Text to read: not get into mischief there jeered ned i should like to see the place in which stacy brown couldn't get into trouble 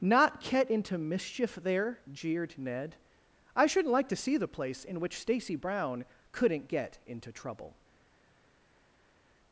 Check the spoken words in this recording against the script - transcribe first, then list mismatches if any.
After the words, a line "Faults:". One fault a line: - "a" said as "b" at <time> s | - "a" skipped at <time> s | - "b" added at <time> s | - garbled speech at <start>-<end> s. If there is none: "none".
not get into mischief there jeered ned i shouldn't like to see the place in which stacy brown couldn't get into trouble
Faults:
- "should" said as "shouldn't" at 3.6 s